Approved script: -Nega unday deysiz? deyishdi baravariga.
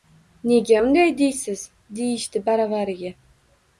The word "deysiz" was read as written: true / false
true